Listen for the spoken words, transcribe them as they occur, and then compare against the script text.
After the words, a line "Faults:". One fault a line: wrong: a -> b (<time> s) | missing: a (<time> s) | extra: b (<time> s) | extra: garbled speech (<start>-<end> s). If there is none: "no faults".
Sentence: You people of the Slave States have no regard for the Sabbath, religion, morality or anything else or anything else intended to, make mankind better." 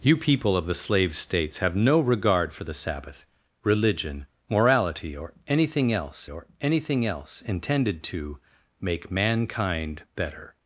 You people of the Slave States have no regard for the Sabbath, religion, morality or anything else or anything else intended to, make mankind better."
Faults:
no faults